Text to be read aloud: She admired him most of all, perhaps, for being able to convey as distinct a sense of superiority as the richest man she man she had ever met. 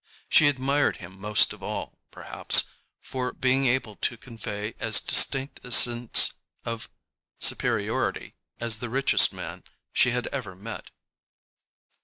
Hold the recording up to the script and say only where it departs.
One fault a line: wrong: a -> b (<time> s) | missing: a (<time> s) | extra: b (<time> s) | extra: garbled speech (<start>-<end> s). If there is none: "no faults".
missing: man she (10.1 s)